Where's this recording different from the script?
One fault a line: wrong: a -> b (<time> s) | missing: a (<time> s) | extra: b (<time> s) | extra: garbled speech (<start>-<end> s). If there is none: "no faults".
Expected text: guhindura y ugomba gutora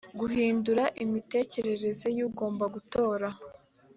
extra: imitekerereze (1.0 s)